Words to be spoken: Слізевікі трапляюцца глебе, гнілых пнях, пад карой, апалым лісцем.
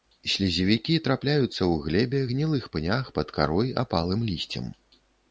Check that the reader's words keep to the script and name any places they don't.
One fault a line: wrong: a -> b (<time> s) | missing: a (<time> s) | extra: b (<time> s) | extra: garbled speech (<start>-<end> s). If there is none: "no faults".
extra: ў (1.5 s)